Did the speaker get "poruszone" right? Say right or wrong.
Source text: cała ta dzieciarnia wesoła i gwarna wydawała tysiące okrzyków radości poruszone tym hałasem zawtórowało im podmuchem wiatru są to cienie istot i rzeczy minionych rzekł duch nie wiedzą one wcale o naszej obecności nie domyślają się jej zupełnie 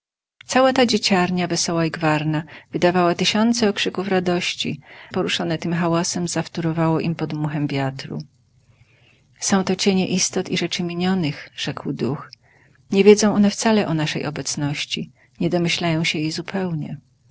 right